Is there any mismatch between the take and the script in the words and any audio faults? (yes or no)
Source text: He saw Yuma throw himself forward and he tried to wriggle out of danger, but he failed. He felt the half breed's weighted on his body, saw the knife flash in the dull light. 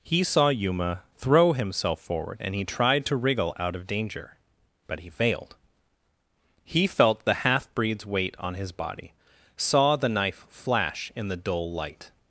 yes